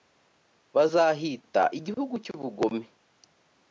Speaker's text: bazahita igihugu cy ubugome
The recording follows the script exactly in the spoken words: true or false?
true